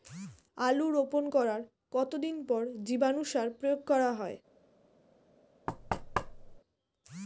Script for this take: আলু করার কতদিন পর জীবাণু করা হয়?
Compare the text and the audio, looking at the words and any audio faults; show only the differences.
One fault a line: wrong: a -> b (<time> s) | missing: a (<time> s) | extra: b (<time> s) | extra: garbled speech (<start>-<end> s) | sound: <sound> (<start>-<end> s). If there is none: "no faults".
extra: রোপণ (0.9 s)
extra: সার প্রয়োগ (3.2 s)
sound: thud (5.7-6.6 s)